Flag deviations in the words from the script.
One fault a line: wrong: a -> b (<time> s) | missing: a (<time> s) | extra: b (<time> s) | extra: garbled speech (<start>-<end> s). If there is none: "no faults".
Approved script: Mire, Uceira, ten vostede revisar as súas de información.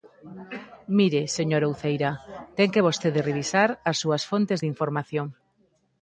extra: señora (1.4 s)
extra: que (2.7 s)
extra: fontes (4.3 s)